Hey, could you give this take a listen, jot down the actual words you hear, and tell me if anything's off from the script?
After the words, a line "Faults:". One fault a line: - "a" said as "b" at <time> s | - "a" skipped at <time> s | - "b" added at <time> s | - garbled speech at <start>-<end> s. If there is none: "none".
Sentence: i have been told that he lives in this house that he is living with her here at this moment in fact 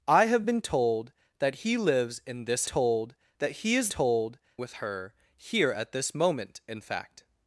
i have been told that he lives in this told that he is told with her here at this moment in fact
Faults:
- "house" said as "told" at 2.6 s
- "living" said as "told" at 3.9 s